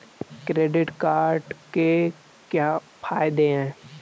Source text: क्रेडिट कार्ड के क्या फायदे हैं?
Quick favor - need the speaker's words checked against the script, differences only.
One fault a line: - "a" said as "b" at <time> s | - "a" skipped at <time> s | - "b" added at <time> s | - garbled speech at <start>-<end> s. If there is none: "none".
none